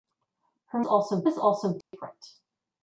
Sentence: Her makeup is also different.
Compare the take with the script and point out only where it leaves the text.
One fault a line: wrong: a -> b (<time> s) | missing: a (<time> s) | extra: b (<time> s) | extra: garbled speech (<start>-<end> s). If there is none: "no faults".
wrong: makeup -> also (0.9 s)